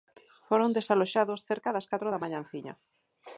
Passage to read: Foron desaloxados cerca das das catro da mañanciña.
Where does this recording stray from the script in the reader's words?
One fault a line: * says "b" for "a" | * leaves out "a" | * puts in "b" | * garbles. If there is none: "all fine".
* leaves out "das"